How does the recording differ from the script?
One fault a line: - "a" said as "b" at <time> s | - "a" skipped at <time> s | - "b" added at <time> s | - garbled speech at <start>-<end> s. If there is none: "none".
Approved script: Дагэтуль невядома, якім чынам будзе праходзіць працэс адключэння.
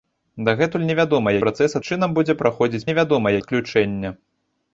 - "якім" said as "працэс" at 1.4 s
- "працэс" said as "невядома" at 2.9 s